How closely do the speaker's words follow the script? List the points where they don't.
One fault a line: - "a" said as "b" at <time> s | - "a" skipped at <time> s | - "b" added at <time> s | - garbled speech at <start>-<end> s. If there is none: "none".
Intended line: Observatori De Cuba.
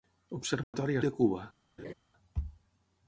none